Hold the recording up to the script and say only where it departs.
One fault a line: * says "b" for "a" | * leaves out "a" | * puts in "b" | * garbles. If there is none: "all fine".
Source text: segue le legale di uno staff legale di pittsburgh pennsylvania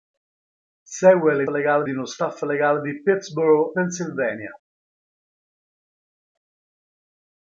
all fine